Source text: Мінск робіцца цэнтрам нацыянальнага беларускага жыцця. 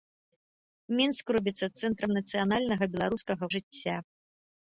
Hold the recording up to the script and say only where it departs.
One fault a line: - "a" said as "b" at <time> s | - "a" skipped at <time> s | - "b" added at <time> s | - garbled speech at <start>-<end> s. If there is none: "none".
none